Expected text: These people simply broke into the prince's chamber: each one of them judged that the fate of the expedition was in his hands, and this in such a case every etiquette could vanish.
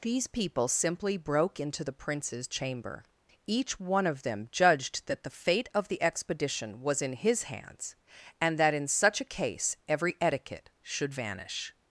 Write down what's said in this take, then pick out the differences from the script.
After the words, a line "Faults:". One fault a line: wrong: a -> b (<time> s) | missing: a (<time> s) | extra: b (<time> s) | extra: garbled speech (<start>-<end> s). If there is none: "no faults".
These people simply broke into the prince's chamber: each one of them judged that the fate of the expedition was in his hands, and that in such a case every etiquette should vanish.
Faults:
wrong: this -> that (8.6 s)
wrong: could -> should (10.8 s)